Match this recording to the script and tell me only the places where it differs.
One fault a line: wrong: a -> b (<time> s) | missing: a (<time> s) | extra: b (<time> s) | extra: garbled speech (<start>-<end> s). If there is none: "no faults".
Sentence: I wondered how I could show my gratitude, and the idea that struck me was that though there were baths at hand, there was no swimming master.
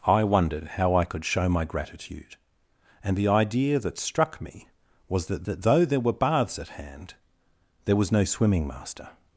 extra: that (5.4 s)